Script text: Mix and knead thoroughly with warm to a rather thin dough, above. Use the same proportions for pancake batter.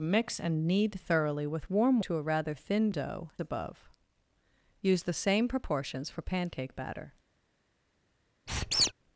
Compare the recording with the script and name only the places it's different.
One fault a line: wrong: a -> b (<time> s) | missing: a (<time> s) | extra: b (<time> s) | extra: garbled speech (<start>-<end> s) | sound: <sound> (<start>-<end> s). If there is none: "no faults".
sound: squeak (8.5-8.9 s)